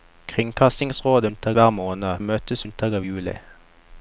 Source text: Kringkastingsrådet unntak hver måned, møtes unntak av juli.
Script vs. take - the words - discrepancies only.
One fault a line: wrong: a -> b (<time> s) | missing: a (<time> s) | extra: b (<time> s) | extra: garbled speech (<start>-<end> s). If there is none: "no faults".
no faults